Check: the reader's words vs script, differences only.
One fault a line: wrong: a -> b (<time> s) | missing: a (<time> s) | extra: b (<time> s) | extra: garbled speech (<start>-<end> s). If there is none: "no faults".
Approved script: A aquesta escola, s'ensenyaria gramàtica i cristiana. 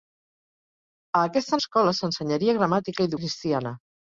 no faults